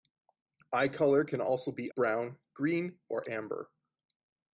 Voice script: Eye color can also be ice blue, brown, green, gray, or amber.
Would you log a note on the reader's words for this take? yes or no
yes